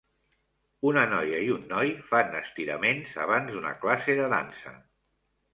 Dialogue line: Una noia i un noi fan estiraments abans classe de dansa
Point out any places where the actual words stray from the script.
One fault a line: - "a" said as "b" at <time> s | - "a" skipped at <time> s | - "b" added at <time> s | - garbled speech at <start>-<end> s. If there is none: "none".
- "d'una" added at 3.6 s